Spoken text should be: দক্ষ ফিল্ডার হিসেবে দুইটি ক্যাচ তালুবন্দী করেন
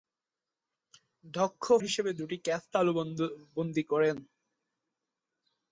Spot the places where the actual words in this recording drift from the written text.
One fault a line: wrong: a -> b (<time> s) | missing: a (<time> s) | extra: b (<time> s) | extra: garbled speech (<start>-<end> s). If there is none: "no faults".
missing: ফিল্ডার (1.6 s)